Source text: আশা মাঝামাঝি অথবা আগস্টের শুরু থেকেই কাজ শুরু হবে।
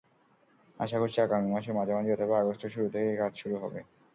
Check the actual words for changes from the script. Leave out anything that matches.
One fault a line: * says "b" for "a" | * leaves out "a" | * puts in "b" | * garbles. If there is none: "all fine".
* puts in "করছি আগামী মাসের"